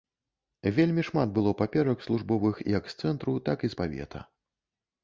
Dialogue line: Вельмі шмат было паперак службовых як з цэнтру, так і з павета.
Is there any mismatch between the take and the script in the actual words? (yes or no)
no